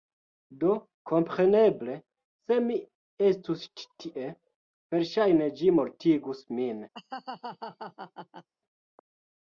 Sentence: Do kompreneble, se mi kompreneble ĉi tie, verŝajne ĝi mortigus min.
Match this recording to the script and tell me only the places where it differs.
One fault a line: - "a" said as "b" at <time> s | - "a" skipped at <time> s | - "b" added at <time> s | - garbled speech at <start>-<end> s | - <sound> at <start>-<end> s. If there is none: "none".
- "kompreneble" said as "estus" at 3.3 s
- laugh at 6.9-8.5 s